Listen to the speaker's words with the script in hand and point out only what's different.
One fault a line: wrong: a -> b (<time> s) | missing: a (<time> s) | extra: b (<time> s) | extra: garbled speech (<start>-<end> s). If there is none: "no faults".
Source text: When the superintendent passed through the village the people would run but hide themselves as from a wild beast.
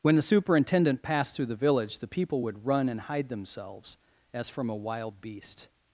wrong: but -> and (2.9 s)